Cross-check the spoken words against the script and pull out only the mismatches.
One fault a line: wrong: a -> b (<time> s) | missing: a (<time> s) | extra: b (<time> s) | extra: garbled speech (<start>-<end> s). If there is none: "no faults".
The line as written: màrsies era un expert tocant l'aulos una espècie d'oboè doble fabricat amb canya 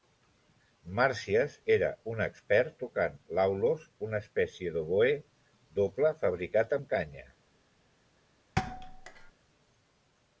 no faults